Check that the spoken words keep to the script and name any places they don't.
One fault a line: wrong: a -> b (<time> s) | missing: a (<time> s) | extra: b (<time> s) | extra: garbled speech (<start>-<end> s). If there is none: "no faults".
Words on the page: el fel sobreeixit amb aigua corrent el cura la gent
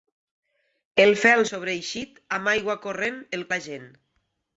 missing: cura (3.5 s)